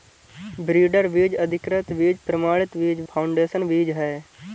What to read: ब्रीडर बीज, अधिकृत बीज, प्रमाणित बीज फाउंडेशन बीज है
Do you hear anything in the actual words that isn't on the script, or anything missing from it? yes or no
no